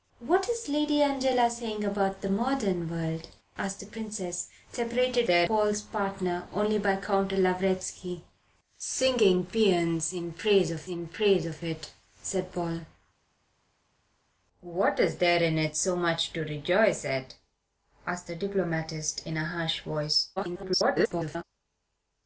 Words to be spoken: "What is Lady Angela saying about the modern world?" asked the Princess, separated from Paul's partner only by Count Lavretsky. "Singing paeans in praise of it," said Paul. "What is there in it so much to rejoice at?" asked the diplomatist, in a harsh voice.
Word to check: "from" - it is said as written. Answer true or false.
false